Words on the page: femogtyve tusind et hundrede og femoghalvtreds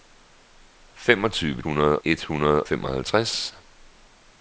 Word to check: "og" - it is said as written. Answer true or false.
false